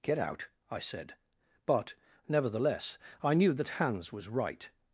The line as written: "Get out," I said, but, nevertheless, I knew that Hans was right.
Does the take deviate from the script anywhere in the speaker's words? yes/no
no